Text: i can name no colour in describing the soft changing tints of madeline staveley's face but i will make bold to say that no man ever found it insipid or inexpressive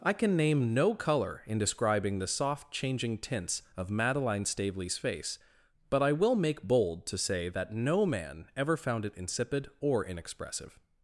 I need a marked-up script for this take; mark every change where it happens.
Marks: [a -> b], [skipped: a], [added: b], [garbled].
i can name no colour in describing the soft changing tints of madeline staveley's face but i will make bold to say that no man ever found it insipid or inexpressive